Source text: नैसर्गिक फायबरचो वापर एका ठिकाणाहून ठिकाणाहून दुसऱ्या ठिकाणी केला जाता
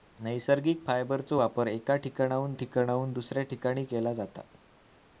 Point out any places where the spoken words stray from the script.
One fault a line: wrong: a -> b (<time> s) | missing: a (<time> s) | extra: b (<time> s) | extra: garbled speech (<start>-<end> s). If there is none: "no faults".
no faults